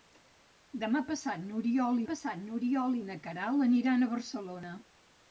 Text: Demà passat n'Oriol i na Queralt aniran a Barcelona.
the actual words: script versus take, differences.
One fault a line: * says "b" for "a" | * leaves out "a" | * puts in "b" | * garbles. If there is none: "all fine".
* puts in "passat n'Oriol"